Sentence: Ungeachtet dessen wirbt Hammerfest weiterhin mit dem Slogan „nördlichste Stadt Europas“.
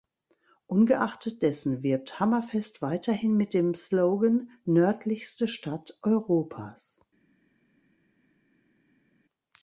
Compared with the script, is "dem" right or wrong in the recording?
right